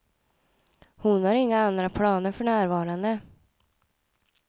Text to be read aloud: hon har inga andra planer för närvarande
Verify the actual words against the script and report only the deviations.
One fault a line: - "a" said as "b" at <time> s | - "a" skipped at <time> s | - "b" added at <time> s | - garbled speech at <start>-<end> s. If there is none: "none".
none